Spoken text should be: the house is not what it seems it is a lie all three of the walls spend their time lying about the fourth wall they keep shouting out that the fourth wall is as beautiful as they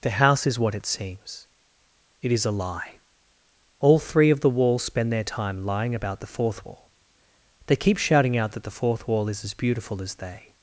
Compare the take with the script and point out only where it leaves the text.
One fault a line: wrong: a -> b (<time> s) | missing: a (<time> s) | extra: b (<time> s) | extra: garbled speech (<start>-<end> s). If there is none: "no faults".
missing: not (0.6 s)